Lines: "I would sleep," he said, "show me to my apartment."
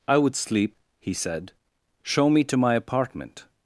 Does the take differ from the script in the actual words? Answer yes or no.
no